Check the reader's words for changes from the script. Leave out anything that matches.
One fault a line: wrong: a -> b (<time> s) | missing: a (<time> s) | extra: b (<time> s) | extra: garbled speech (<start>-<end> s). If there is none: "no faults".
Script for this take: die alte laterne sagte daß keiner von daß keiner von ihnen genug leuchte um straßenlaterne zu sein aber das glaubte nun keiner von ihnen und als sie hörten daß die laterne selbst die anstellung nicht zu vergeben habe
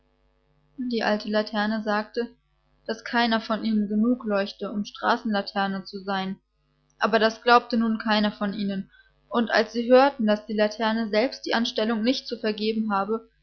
missing: daß keiner von (3.6 s)